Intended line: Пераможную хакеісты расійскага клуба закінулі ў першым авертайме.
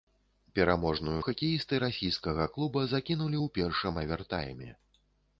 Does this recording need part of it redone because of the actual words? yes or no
no